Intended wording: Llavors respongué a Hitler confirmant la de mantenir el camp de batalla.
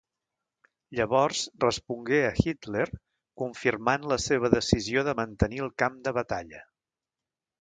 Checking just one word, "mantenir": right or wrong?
right